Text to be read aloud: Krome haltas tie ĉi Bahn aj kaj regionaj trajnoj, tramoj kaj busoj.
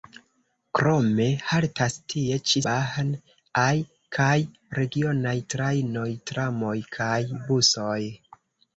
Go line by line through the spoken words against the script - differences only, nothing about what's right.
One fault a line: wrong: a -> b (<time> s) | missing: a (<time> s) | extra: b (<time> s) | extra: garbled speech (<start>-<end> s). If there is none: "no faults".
no faults